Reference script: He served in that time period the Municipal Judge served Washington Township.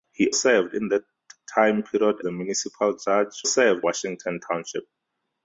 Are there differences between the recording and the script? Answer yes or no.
no